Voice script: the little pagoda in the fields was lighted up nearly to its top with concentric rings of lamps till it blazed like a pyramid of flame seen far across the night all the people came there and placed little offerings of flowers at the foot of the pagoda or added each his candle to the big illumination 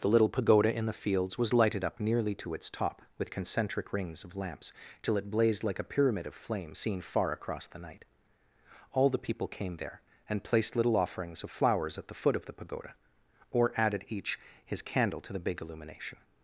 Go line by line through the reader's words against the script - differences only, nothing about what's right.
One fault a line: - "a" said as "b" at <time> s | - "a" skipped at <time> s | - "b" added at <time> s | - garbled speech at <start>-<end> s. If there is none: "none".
none